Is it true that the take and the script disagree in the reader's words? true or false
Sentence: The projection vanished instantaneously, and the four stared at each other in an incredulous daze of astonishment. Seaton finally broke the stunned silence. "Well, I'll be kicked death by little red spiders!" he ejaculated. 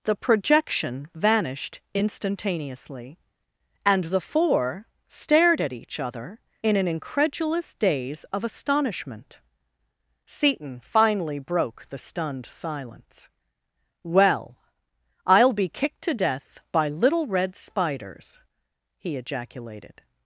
true